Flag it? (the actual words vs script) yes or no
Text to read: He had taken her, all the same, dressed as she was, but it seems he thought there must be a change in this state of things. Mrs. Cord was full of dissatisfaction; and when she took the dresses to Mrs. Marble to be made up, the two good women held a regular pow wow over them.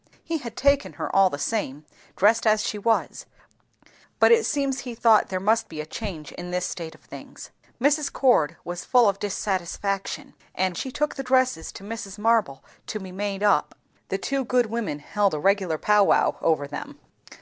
yes